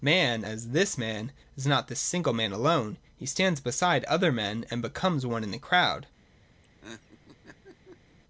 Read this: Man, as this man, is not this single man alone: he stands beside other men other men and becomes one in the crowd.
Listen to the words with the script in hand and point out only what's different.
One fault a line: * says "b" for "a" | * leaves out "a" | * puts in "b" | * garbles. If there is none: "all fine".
* leaves out "other men"